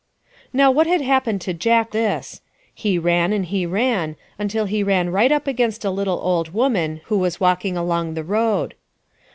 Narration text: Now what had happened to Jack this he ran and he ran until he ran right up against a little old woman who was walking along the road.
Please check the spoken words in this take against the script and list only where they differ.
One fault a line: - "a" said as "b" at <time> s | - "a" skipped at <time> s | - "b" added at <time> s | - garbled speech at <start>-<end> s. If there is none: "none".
none